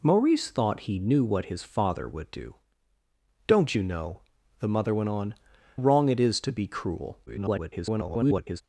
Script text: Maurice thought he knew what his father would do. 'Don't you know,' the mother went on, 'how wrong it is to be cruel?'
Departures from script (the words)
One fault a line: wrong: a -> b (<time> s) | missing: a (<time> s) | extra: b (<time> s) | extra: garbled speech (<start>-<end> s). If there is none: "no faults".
missing: how (5.3 s)
extra: garbled speech (7.3-8.6 s)